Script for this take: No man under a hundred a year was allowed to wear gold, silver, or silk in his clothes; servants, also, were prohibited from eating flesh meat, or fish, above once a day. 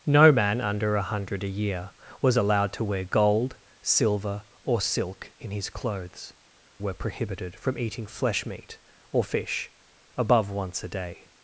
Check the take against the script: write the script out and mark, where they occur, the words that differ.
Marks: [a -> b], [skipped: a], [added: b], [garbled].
No man under a hundred a year was allowed to wear gold, silver, or silk in his clothes; [skipped: servants, also,] were prohibited from eating flesh meat, or fish, above once a day.